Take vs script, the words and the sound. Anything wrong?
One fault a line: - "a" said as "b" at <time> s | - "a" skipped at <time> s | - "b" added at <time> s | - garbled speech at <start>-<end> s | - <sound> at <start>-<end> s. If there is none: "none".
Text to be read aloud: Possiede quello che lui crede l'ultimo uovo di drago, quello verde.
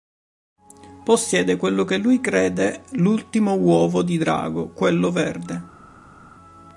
none